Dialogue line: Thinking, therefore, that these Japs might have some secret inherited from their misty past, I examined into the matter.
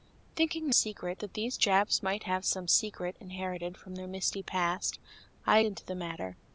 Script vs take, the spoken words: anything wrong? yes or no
yes